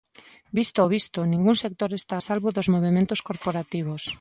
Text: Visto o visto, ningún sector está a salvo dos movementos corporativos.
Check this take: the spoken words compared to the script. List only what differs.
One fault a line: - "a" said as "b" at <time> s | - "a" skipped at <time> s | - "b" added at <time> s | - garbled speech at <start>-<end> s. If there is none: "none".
none